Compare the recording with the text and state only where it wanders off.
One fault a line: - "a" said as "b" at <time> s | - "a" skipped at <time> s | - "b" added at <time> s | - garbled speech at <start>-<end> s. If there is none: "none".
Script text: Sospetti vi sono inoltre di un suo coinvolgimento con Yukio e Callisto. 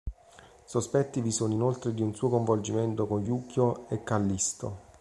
none